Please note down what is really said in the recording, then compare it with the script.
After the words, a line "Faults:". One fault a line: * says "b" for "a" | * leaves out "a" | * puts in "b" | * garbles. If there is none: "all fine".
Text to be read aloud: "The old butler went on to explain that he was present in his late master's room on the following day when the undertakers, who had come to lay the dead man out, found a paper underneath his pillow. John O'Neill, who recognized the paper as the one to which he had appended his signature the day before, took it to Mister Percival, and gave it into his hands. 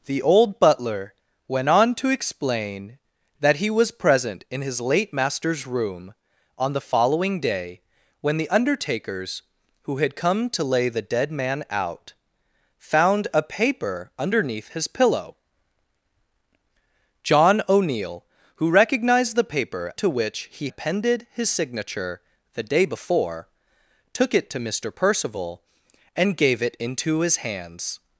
"The old butler went on to explain that he was present in his late master's room on the following day when the undertakers, who had come to lay the dead man out, found a paper underneath his pillow. John O'Neill, who recognized the paper to which he appended his signature the day before, took it to Mister Percival, and gave it into his hands.
Faults:
* leaves out "as the one"
* leaves out "had"